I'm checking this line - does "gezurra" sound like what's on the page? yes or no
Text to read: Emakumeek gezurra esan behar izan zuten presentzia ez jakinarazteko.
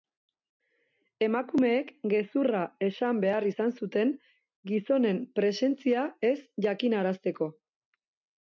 yes